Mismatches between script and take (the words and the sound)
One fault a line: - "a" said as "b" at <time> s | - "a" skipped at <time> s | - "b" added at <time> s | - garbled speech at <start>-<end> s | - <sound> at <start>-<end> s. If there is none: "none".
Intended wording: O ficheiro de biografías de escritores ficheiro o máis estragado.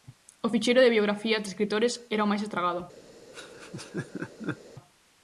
- "ficheiro" said as "era" at 2.1 s
- laugh at 3.3-4.6 s